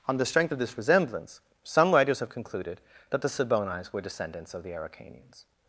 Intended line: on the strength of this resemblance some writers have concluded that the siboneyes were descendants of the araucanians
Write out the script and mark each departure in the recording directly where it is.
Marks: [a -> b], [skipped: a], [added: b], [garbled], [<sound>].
on the strength of this resemblance some writers have concluded that the siboneyes were descendants of the araucanians